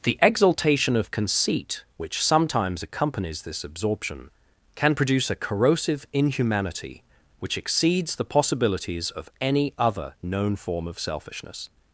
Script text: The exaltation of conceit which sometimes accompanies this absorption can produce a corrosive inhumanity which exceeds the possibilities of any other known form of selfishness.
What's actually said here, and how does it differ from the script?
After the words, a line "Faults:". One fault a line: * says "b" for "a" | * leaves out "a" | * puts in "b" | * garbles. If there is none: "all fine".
The exaltation of conceit which sometimes accompanies this absorption can produce a corrosive inhumanity which exceeds the possibilities of any other known form of selfishness.
Faults:
all fine